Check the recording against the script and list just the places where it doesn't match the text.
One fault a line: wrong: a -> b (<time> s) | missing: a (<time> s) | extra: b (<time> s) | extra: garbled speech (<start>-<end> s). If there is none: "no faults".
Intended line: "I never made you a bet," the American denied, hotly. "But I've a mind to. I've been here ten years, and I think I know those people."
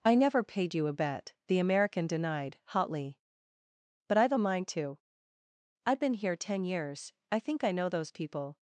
wrong: made -> paid (0.4 s)
missing: and (7.1 s)